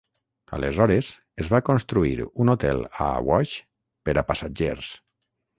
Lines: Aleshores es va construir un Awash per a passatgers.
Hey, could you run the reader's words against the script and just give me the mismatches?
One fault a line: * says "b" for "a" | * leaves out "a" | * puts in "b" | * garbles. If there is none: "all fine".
* puts in "hotel a"